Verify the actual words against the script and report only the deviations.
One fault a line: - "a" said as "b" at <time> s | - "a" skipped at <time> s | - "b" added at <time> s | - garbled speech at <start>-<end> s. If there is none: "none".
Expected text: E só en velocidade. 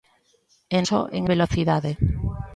none